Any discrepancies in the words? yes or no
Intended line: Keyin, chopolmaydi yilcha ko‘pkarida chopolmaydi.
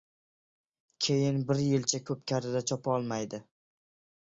yes